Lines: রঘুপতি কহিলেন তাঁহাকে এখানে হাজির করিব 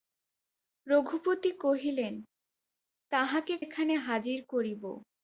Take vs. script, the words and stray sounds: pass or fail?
pass